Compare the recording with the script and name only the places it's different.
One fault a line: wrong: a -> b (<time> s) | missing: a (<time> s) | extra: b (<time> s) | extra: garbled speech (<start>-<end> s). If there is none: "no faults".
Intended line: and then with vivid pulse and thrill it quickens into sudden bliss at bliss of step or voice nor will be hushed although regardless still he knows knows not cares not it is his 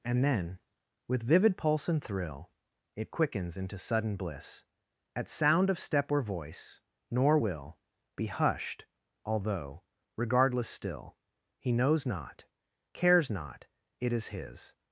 wrong: bliss -> sound (5.3 s)
missing: knows (12.1 s)